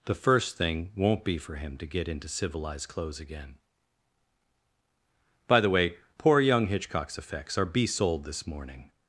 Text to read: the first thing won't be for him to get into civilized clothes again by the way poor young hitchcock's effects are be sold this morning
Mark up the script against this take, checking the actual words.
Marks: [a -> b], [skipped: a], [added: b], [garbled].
the first thing won't be for him to get into civilized clothes again by the way poor young hitchcock's effects are be sold this morning